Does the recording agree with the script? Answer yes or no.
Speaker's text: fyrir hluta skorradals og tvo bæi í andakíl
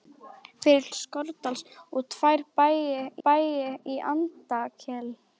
no